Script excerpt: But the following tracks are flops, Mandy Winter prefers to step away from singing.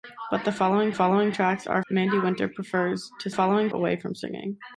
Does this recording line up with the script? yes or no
no